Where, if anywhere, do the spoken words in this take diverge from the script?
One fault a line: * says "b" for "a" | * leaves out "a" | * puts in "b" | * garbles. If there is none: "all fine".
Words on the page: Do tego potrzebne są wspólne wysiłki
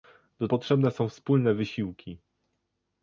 * leaves out "tego"